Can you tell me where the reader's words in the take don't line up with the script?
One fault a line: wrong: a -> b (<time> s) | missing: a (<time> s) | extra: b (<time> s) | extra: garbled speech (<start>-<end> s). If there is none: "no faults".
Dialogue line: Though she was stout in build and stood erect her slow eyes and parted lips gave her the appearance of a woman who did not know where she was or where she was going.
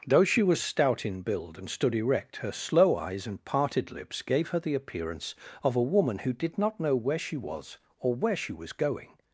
no faults